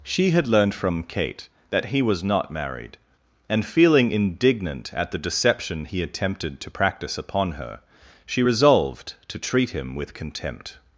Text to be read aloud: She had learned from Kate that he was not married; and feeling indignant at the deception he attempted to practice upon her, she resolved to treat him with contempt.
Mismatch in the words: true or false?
false